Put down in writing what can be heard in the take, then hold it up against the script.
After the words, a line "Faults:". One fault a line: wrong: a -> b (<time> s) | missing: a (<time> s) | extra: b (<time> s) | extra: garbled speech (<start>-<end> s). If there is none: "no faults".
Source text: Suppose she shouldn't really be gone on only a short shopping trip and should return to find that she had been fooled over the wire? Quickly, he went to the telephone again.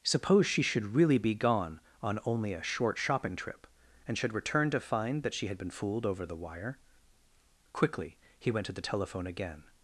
Suppose she should really be gone on only a short shopping trip and should return to find that she had been fooled over the wire? Quickly, he went to the telephone again.
Faults:
wrong: shouldn't -> should (0.6 s)